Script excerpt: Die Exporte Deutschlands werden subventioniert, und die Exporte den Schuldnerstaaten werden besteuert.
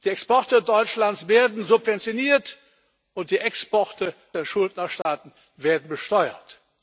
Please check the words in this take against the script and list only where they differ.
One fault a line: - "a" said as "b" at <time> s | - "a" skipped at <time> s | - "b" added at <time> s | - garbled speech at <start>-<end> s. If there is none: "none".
none